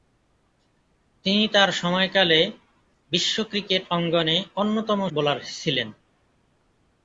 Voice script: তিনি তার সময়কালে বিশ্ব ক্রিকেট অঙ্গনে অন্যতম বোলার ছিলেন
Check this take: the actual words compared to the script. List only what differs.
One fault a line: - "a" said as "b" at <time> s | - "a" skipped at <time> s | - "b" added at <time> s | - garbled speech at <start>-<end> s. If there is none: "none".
none